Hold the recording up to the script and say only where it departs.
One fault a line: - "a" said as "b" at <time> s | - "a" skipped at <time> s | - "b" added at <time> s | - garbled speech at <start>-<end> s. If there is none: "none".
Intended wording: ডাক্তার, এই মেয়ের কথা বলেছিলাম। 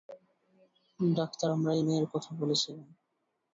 - "আমরা" added at 1.5 s